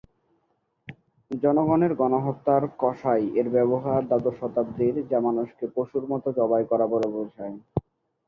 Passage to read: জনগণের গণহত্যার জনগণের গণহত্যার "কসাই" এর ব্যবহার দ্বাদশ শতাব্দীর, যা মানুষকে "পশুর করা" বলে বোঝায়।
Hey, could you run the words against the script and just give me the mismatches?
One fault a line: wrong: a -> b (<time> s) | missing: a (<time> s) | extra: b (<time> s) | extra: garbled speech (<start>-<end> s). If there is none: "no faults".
missing: জনগণের গণহত্যার (2.6 s)
extra: মতো জবাই (6.1 s)